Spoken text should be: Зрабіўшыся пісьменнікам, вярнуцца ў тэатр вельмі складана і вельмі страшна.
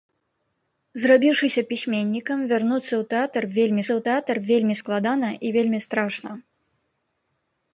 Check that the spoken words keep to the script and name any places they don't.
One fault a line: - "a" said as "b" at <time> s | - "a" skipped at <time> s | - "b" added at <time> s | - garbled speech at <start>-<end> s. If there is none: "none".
- "ў тэатр вельмі" added at 3.9 s